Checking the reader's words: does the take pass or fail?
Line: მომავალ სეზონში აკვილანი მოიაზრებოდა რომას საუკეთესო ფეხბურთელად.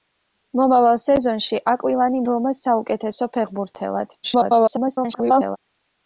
fail